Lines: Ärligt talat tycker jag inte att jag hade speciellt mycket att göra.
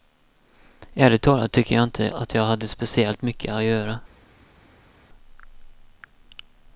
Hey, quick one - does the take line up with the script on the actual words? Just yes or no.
yes